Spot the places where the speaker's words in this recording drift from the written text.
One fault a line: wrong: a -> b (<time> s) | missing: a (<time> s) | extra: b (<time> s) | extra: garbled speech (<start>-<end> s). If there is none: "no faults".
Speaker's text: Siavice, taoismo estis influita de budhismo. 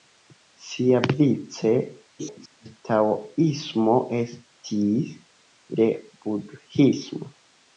extra: garbled speech (2.2-2.8 s)
missing: influita (5.1 s)